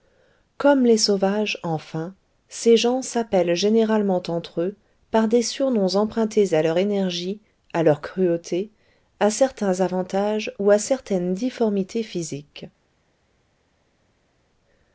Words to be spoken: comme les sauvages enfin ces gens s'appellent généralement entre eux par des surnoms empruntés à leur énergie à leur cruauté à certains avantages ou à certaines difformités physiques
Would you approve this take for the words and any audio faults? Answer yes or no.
yes